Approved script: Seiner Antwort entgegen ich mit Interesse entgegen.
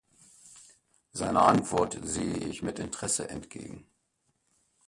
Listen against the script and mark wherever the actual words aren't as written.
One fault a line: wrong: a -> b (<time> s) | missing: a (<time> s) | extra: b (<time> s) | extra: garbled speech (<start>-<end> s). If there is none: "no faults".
wrong: entgegen -> sehe (2.0 s)